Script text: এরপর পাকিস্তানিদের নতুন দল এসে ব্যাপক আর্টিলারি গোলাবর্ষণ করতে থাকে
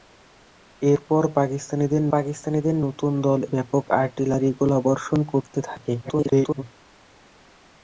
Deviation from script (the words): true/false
true